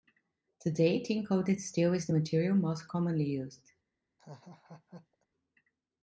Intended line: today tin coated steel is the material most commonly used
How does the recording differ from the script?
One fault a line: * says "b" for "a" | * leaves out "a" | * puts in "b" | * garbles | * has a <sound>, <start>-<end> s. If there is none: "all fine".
* has a laugh, 4.2-5.3 s